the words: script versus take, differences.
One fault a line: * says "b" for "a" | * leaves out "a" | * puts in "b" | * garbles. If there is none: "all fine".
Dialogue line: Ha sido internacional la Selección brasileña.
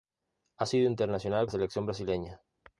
all fine